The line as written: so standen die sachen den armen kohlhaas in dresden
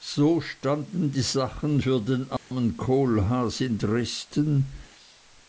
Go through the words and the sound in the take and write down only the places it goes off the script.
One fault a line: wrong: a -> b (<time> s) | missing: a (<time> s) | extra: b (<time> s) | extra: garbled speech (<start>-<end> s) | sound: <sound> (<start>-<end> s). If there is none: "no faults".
extra: für (1.8 s)
sound: dropout (2.4-2.5 s)